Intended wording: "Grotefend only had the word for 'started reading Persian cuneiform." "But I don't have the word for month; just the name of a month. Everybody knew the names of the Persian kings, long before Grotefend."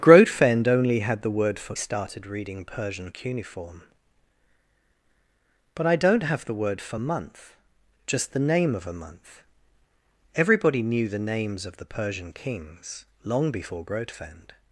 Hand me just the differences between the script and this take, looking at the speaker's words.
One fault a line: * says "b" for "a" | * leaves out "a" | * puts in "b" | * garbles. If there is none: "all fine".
all fine